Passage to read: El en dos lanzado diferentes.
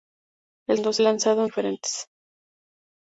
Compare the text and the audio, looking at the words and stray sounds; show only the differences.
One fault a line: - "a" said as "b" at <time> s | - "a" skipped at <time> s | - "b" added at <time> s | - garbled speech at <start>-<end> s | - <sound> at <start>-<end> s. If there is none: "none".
none